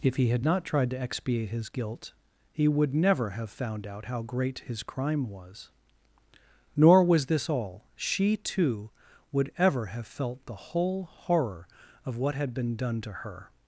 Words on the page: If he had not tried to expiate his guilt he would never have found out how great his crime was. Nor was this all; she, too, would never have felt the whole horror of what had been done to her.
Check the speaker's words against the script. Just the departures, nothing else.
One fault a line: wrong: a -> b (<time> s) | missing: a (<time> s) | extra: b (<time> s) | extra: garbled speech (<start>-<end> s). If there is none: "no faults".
wrong: never -> ever (9.6 s)